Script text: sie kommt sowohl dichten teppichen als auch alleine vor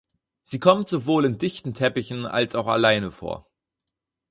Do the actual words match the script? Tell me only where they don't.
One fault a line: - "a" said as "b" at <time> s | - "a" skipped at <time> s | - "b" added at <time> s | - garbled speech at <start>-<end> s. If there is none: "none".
- "in" added at 1.2 s